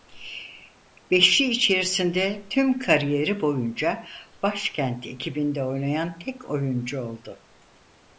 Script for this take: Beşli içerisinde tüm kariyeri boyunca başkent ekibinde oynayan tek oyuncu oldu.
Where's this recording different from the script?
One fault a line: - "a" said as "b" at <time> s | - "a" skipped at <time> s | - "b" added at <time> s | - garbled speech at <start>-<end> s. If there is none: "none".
none